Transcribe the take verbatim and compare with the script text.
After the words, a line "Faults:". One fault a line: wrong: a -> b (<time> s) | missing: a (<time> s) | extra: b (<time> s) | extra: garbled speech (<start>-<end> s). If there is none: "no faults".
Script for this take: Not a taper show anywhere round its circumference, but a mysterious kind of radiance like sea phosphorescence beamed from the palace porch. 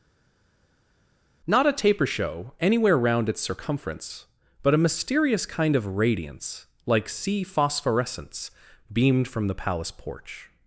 Not a taper show anywhere round its circumference, but a mysterious kind of radiance like sea phosphorescence beamed from the palace porch.
Faults:
no faults